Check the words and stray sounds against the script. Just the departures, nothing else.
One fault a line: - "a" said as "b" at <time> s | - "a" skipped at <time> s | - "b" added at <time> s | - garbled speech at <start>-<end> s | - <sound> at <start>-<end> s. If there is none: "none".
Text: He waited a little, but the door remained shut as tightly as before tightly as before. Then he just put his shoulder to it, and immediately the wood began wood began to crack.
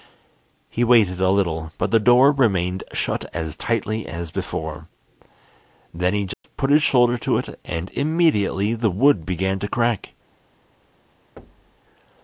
- "tightly as before" skipped at 4.9 s
- dropout at 6.3-6.4 s
- "wood began" skipped at 9.6 s
- thud at 11.4-11.8 s